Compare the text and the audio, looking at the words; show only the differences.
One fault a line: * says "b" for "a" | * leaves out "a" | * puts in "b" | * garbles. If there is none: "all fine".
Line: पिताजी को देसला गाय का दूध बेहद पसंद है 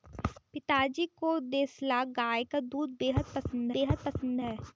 * puts in "बेहद पसंद"